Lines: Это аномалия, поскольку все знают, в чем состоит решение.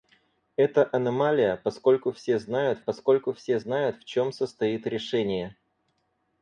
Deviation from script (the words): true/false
true